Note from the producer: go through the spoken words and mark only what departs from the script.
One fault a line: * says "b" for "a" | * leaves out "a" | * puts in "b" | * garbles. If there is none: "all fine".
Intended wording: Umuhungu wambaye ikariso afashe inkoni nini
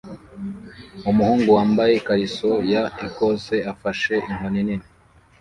* puts in "ya Ecosse"